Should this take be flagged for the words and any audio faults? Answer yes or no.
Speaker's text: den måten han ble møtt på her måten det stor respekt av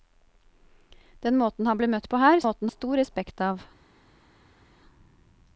no